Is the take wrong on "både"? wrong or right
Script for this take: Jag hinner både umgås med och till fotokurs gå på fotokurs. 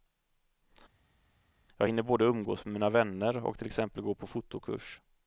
right